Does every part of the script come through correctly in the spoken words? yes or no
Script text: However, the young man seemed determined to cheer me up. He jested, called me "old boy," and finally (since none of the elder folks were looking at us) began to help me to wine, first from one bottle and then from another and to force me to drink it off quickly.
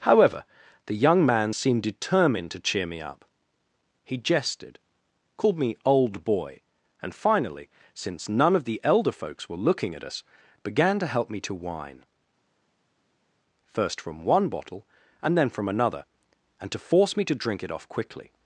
yes